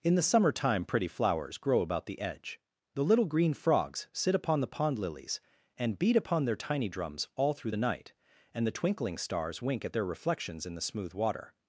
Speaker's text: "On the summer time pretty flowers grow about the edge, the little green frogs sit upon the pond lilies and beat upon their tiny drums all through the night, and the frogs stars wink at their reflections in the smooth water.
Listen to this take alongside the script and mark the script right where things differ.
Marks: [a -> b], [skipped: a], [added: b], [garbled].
["On -> In] the summer time pretty flowers grow about the edge, the little green frogs sit upon the pond lilies and beat upon their tiny drums all through the night, and the [frogs -> twinkling] stars wink at their reflections in the smooth water.